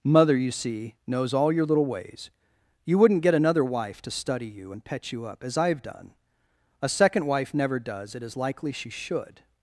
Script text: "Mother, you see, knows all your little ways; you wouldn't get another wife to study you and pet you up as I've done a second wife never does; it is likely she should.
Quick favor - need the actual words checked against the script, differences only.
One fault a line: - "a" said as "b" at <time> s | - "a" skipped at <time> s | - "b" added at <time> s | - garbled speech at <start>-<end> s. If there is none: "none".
none